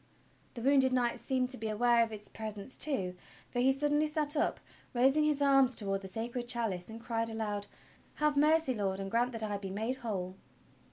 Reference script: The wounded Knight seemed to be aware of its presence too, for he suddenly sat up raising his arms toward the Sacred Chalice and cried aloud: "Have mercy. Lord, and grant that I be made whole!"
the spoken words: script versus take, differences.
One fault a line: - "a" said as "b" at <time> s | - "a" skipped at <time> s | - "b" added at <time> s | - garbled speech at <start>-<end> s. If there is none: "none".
none